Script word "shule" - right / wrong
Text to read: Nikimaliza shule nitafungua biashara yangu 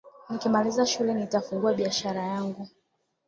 right